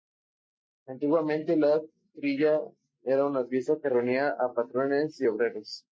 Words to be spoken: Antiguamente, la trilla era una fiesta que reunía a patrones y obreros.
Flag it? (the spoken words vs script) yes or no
no